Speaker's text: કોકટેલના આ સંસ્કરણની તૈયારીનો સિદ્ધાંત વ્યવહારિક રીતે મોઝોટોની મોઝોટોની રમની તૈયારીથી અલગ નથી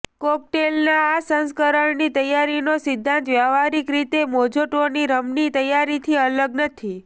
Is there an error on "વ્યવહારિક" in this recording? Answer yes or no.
no